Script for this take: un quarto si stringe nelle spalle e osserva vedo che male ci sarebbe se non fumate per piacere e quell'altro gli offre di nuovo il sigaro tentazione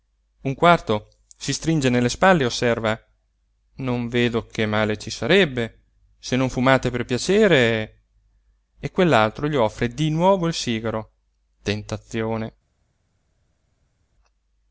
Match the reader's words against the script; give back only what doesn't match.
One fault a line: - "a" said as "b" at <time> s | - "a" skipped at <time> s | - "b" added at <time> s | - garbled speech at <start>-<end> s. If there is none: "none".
- "non" added at 3.8 s